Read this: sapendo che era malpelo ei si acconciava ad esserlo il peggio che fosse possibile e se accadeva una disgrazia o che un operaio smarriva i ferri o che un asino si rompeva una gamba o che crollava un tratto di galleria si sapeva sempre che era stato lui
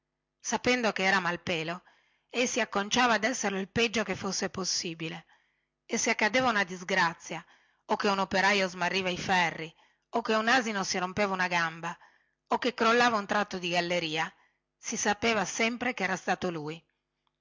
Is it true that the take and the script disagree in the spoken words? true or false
false